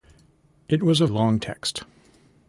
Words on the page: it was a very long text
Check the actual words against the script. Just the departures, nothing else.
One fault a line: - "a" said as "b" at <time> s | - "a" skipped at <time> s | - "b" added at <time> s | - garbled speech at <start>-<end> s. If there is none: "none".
- "very" skipped at 1.1 s